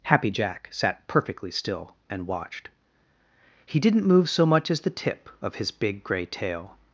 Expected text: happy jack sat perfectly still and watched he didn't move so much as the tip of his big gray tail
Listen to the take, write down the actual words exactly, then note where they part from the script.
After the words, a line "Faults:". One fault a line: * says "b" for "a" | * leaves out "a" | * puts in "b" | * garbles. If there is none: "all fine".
happy jack sat perfectly still and watched he didn't move so much as the tip of his big gray tail
Faults:
all fine